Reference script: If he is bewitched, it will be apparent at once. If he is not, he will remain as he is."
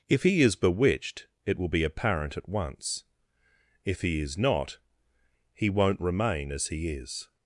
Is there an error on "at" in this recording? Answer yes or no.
no